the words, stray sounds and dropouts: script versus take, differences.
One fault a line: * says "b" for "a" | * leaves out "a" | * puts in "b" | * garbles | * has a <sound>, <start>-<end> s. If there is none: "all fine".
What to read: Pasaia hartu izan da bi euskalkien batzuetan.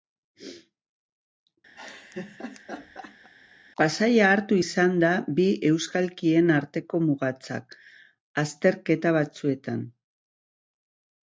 * has a laugh, 1.7-3.3 s
* puts in "arteko mugatzat azterketa"